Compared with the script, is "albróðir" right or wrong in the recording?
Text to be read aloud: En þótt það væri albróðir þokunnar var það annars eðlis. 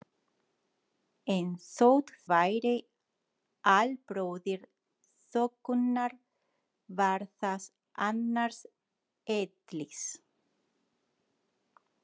right